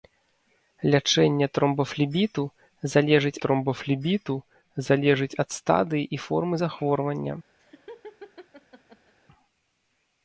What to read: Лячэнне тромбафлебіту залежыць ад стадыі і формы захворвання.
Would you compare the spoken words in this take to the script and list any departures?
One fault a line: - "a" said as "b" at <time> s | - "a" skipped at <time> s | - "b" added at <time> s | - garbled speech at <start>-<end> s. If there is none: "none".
- "тромбафлебіту залежыць" added at 3.4 s